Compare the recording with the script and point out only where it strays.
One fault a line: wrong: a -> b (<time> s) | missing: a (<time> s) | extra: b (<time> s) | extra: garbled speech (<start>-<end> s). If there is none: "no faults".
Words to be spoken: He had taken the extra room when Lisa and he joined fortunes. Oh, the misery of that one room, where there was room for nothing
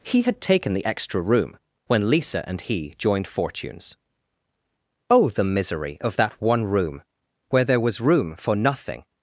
no faults